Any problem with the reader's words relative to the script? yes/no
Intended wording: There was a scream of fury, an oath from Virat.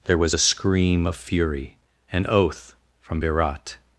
no